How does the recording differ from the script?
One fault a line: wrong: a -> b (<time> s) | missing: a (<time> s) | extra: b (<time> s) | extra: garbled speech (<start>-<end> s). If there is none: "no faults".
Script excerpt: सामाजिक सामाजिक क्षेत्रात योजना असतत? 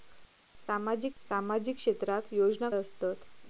no faults